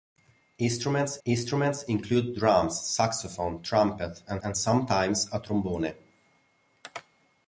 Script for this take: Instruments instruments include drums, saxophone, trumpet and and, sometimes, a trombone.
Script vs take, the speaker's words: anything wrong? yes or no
no